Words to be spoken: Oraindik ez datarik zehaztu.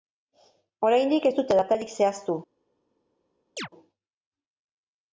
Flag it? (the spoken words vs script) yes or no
yes